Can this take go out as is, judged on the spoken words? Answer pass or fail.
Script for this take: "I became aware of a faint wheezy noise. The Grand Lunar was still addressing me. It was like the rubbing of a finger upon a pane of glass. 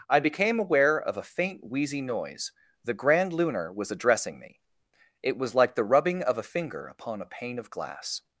fail